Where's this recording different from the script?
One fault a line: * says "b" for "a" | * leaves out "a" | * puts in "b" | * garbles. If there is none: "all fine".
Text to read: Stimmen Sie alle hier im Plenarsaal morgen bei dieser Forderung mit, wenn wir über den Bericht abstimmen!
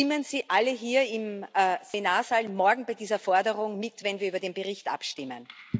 all fine